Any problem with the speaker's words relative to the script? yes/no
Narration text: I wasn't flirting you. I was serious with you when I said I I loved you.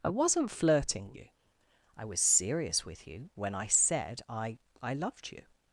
no